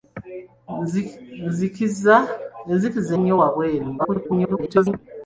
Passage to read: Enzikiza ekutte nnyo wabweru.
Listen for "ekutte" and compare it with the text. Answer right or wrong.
wrong